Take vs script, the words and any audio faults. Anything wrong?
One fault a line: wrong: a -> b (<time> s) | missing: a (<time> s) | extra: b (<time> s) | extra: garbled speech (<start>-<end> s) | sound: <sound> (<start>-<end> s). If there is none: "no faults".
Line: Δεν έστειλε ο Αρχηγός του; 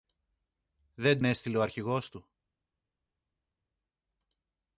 no faults